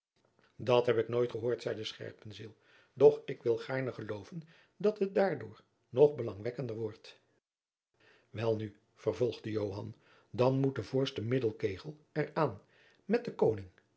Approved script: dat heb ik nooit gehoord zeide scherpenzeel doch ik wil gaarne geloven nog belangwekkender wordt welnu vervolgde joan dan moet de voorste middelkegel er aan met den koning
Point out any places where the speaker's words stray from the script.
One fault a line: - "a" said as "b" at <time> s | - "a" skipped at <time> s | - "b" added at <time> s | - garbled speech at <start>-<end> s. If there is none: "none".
- "dat het daardoor" added at 4.8 s